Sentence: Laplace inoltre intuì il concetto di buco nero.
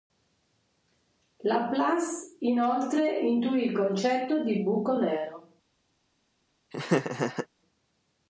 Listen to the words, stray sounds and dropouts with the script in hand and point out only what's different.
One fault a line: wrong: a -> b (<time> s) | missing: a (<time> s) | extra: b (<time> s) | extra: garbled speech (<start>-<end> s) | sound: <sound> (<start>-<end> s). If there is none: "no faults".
sound: laugh (6.7-7.5 s)